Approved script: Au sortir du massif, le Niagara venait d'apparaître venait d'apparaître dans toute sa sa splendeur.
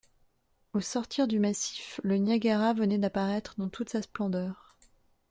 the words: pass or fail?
fail